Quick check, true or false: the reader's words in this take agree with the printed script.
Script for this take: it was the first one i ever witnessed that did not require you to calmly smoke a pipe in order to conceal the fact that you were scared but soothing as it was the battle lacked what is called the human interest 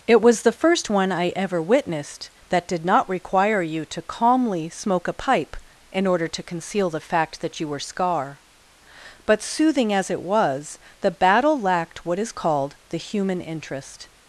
false